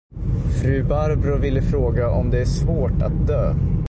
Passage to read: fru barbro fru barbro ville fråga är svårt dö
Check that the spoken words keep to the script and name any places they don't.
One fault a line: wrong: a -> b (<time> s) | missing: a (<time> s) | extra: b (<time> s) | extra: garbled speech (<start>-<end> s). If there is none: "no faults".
wrong: fru barbro ville fråga -> ville fråga om det (1.4 s)
extra: att (3.0 s)